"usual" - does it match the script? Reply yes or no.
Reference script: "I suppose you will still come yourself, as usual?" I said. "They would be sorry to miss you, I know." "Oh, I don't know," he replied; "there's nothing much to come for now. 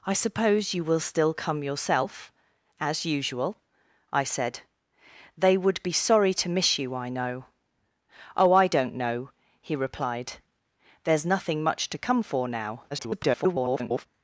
yes